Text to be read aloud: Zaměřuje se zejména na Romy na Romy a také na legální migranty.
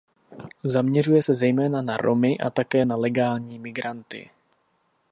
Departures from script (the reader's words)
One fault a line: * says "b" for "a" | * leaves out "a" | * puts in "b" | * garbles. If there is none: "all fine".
* leaves out "na Romy"